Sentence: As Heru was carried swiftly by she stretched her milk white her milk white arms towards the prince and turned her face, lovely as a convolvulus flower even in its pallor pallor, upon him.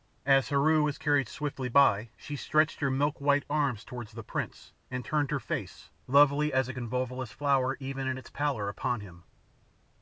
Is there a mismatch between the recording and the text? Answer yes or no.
yes